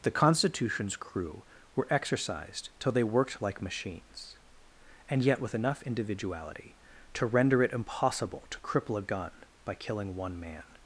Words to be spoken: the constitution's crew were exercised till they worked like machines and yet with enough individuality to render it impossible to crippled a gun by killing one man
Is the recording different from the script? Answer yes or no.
yes